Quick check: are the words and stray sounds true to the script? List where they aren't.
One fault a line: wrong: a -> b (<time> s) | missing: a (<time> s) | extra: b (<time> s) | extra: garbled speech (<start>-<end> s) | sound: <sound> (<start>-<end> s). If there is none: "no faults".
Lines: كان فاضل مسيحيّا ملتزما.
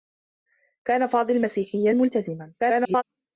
extra: garbled speech (2.6-3.0 s)